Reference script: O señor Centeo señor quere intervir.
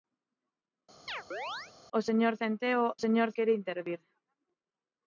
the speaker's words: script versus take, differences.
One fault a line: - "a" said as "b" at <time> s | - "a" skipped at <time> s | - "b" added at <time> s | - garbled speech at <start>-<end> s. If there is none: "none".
none